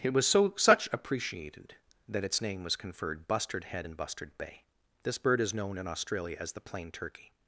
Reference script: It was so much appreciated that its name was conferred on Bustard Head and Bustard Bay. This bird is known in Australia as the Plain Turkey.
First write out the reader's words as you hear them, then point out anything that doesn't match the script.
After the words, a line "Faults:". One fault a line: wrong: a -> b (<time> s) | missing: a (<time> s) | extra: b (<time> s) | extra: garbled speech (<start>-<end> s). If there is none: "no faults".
It was so such appreciated that its name was conferred Bustard Head and Bustard Bay. This bird is known in Australia as the Plain Turkey.
Faults:
wrong: much -> such (0.6 s)
missing: on (3.3 s)